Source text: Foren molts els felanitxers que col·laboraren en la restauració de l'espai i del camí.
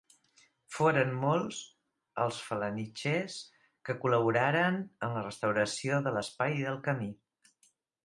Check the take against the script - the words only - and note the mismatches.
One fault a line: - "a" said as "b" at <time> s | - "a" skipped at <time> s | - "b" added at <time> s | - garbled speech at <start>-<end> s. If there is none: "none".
none